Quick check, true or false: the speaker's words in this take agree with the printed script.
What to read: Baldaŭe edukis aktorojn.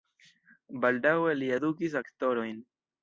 false